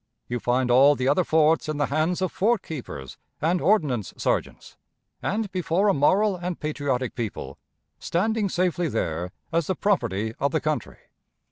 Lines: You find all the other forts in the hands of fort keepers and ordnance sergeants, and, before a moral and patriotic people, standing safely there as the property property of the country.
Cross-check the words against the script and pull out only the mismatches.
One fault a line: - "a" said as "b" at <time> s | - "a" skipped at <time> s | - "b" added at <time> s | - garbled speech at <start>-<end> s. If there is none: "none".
- "property" skipped at 10.3 s